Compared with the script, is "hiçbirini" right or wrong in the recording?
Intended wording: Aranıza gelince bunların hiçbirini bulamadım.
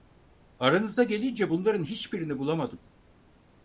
right